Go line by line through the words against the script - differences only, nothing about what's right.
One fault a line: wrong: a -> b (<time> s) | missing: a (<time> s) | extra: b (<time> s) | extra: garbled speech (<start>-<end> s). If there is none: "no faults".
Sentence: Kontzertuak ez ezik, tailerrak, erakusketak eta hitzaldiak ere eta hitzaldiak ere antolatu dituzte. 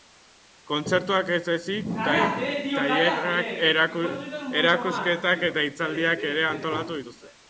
missing: eta hitzaldiak ere (6.4 s)